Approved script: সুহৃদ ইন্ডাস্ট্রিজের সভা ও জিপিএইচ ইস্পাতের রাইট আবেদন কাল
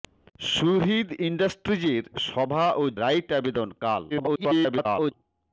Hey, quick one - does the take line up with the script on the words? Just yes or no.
no